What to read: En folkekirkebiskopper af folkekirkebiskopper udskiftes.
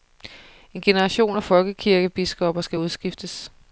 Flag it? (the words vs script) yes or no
yes